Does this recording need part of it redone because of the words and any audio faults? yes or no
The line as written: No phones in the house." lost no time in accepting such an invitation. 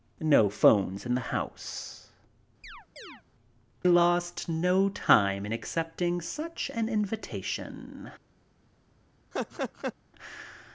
yes